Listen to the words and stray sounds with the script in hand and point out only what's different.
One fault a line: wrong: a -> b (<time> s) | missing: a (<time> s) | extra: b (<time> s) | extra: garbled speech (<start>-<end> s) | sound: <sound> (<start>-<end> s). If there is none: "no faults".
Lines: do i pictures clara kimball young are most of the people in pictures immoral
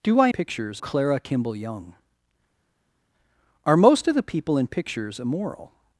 no faults